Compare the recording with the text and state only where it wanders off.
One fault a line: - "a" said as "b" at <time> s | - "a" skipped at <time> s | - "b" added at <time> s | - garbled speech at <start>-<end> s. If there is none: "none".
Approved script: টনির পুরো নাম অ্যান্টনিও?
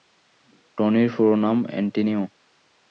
none